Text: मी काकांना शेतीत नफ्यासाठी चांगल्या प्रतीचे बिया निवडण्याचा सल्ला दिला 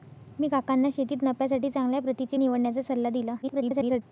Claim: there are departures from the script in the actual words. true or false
true